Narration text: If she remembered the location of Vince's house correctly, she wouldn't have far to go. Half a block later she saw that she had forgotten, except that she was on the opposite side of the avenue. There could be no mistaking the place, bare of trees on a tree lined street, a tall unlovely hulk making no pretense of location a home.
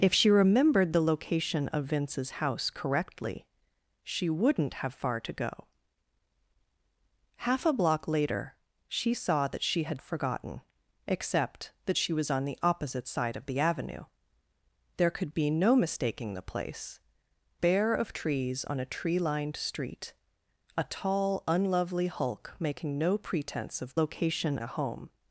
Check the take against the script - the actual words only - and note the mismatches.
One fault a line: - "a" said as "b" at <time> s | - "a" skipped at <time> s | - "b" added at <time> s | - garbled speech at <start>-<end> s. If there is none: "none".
none